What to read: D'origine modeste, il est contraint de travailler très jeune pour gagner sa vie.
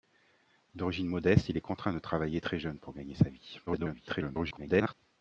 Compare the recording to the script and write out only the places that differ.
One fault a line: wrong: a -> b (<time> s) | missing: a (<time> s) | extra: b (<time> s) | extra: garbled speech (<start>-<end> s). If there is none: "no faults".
extra: garbled speech (3.7-4.9 s)